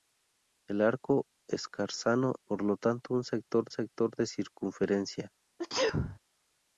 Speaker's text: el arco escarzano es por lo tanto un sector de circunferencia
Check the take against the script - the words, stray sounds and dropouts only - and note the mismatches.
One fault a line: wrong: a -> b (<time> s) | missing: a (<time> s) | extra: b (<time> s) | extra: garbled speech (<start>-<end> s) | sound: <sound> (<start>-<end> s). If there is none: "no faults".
missing: es (2.3 s)
extra: sector (3.7 s)
sound: sneeze (5.6-6.2 s)